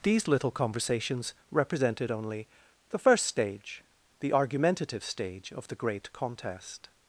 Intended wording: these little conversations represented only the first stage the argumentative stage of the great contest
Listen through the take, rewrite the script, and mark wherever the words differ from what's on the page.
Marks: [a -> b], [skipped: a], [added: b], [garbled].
these little conversations represented only the first stage the argumentative stage of the great contest